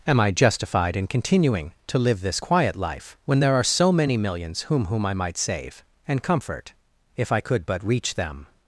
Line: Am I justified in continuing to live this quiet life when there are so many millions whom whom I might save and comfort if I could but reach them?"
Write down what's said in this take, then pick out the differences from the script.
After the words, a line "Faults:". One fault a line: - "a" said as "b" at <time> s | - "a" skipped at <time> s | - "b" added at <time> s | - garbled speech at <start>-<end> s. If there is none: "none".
Am I justified in continuing to live this quiet life when there are so many millions whom whom I might save and comfort if I could but reach them?"
Faults:
none